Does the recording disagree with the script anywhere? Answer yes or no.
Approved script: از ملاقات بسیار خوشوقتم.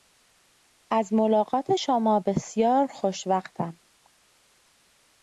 yes